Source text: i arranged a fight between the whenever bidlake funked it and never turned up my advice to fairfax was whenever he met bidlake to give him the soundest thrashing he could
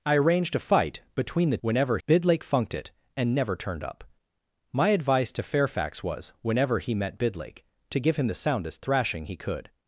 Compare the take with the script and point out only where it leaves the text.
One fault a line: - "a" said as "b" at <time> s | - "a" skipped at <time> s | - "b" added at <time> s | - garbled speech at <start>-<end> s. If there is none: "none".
none